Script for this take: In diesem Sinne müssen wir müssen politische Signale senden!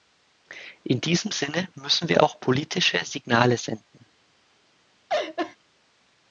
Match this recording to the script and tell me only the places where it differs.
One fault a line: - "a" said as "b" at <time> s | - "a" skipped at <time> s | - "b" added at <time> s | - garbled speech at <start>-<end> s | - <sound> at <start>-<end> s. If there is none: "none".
- "müssen" said as "auch" at 2.2 s
- laugh at 5.1-5.6 s